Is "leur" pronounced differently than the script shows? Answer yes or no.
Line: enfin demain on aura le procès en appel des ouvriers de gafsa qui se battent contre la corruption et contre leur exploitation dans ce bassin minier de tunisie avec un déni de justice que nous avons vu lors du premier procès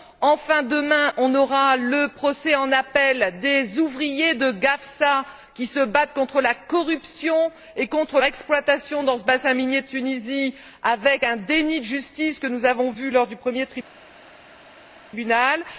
yes